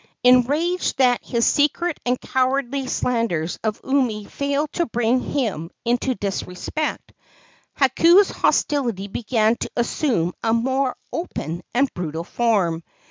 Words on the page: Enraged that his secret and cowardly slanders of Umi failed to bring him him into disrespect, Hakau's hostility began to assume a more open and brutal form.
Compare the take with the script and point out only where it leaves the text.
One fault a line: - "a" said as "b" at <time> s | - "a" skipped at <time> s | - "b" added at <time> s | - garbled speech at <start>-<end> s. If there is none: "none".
- "him" skipped at 5.7 s